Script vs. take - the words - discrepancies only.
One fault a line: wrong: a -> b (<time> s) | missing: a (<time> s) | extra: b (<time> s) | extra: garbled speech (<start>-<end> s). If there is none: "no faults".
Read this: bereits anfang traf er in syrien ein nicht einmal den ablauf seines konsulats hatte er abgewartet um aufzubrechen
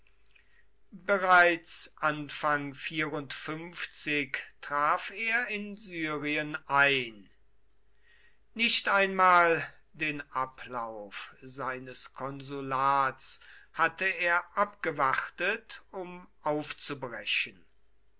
no faults